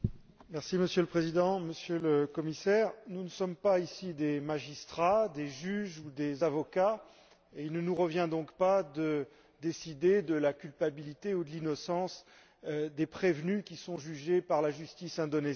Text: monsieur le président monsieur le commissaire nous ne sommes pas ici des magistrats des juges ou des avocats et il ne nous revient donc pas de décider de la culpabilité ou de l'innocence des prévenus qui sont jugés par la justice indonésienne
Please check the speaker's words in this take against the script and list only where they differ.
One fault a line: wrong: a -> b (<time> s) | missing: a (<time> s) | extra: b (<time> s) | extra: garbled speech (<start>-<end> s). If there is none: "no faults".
no faults